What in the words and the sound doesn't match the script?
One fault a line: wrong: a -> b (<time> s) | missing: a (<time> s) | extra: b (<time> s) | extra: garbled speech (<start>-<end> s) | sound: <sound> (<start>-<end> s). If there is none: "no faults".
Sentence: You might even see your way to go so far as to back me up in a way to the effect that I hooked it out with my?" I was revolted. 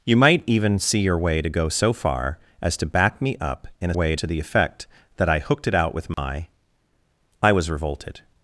sound: dropout (6.1-6.2 s)